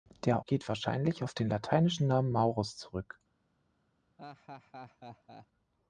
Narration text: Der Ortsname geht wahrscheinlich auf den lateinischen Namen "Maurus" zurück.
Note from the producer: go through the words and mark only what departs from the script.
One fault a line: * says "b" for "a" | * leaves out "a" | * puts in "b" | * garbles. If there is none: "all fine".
* leaves out "Ortsname"